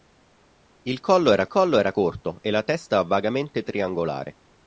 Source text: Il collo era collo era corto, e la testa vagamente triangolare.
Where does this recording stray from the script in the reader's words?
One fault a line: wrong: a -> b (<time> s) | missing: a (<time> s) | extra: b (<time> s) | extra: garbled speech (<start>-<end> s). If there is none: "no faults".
no faults